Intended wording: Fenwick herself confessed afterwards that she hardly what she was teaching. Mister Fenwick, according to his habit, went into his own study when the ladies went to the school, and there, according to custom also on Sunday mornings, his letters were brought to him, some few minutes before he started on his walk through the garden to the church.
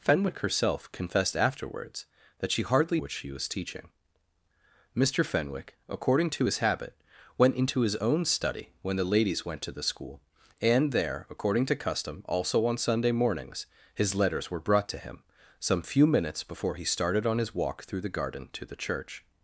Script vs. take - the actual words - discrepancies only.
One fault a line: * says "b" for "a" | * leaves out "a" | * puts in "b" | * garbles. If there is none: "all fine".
all fine